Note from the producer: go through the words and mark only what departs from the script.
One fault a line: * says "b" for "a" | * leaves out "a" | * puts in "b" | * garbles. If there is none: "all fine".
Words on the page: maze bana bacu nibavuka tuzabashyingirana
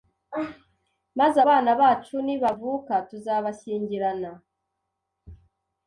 all fine